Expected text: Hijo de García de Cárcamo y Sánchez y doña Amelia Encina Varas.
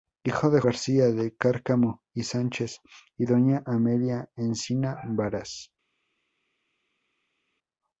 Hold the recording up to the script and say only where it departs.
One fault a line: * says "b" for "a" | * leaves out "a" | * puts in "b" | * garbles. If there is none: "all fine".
all fine